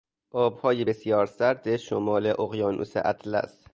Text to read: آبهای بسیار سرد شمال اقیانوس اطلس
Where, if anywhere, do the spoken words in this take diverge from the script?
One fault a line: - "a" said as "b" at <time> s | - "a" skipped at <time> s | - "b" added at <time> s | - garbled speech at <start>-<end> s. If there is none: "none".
none